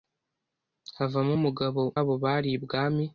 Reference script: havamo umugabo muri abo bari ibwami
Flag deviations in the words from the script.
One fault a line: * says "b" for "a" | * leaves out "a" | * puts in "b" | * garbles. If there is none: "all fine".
* leaves out "muri"